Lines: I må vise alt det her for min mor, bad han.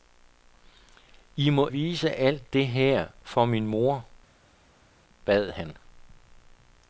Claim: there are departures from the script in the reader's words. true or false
false